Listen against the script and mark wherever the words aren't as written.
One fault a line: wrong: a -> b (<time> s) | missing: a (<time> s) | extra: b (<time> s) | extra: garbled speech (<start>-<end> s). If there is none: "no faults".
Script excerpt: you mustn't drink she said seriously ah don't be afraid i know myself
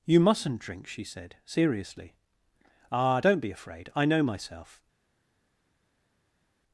no faults